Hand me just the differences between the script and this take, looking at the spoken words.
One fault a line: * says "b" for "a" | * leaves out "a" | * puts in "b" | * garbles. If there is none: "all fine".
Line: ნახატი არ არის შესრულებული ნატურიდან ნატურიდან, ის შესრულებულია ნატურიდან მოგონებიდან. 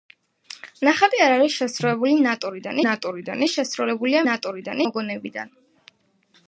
all fine